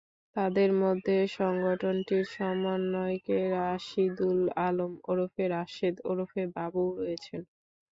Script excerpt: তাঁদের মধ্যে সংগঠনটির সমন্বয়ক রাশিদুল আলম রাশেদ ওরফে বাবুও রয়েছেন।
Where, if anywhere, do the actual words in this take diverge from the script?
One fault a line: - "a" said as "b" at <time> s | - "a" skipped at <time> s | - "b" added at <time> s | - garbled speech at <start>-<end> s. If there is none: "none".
- "ওরফে" added at 5.0 s